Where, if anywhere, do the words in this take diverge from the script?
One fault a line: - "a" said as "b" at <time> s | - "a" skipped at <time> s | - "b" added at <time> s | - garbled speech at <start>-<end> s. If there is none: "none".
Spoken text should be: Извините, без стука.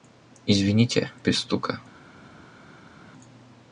none